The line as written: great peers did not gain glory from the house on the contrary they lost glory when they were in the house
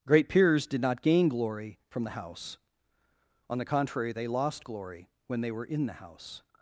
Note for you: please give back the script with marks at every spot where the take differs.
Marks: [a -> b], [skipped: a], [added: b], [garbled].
great peers did not gain glory from the house on the contrary they lost glory when they were in the house